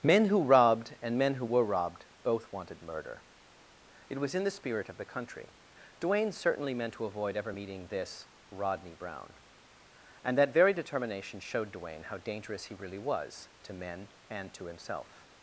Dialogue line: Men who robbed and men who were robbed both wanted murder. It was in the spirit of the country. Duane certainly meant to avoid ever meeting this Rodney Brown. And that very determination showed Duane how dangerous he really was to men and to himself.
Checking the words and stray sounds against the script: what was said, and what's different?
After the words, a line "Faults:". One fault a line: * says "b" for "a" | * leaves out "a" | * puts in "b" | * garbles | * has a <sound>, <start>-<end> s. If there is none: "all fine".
Men who robbed and men who were robbed both wanted murder. It was in the spirit of the country. Duane certainly meant to avoid ever meeting this Rodney Brown. And that very determination showed Duane how dangerous he really was to men and to himself.
Faults:
all fine